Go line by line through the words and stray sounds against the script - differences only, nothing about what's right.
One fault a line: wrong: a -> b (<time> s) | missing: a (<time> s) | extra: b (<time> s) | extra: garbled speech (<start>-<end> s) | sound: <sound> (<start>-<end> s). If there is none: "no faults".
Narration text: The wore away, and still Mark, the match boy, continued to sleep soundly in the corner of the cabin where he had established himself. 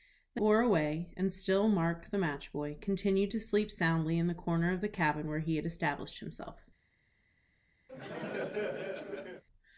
sound: laugh (7.9-9.4 s)